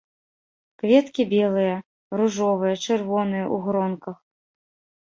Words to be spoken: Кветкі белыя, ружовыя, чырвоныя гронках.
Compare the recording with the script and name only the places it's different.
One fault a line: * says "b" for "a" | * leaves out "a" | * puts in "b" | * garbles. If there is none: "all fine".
* puts in "ў"